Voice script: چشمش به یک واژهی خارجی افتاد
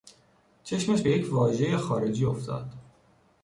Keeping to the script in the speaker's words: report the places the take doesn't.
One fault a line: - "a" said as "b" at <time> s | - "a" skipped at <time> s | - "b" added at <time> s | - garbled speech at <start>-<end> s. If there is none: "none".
none